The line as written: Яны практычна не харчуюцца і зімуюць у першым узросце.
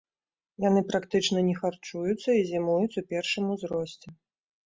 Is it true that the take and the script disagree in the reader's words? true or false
false